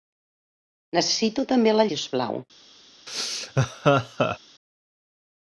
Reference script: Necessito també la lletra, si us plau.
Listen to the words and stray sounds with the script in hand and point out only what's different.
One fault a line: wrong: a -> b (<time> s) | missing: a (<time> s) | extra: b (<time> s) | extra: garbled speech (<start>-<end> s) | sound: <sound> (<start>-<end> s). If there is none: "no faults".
missing: lletra (1.9 s)
sound: laugh (3.1-4.4 s)